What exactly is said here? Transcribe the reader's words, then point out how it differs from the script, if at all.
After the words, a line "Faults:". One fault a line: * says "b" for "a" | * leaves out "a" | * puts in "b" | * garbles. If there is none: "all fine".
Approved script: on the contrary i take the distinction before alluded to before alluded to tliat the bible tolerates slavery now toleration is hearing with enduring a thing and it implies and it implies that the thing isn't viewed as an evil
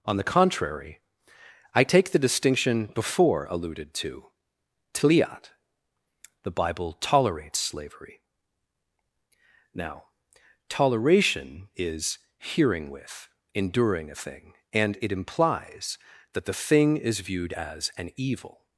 on the contrary i take the distinction before alluded to tliat the bible tolerates slavery now toleration is hearing with enduring a thing and it implies that the thing is viewed as an evil
Faults:
* leaves out "before alluded to"
* leaves out "and it implies"
* says "is" for "isn't"